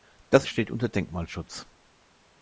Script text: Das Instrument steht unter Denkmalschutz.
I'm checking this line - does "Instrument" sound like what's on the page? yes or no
no